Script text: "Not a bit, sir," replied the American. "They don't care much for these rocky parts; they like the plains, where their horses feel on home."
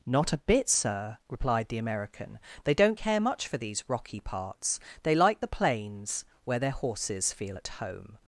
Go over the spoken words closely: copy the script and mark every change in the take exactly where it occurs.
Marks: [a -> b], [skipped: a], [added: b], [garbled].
"Not a bit, sir," replied the American. "They don't care much for these rocky parts; they like the plains, where their horses feel [on -> at] home."